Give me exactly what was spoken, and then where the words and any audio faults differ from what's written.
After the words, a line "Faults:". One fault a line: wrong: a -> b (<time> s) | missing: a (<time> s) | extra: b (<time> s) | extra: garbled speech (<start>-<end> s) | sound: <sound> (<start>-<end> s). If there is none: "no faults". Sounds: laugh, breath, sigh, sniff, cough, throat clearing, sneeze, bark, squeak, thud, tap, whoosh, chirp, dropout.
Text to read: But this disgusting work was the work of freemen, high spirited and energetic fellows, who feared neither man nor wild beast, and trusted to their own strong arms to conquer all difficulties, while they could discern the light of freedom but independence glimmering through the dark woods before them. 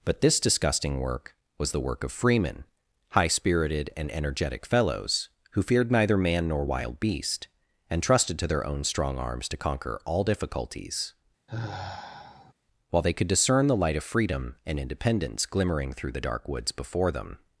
But this disgusting work was the work of freemen, high spirited and energetic fellows, who feared neither man nor wild beast, and trusted to their own strong arms to conquer all difficulties, while they could discern the light of freedom and independence glimmering through the dark woods before them.
Faults:
sound: sigh (11.5-12.5 s)
wrong: but -> and (14.6 s)